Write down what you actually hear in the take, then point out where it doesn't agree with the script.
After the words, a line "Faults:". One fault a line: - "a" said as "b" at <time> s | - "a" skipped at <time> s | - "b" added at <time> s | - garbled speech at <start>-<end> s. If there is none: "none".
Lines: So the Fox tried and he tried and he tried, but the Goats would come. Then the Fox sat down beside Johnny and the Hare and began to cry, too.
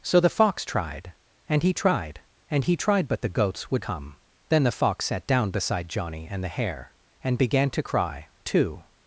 So the Fox tried and he tried and he tried, but the Goats would come. Then the Fox sat down beside Johnny and the Hare and began to cry, too.
Faults:
none